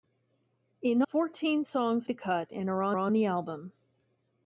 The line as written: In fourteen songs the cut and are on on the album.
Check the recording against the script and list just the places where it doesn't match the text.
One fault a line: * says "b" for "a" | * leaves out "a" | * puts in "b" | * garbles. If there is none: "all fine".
all fine